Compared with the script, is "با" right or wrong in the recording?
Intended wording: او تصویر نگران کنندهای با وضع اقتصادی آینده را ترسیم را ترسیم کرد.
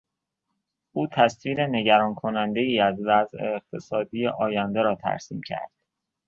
wrong